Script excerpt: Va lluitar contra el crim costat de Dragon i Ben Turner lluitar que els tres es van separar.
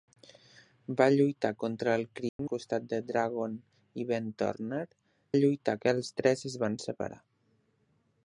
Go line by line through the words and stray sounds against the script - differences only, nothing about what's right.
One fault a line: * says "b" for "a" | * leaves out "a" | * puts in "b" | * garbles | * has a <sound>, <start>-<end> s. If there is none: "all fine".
* has a dropout, 2.3-2.4 s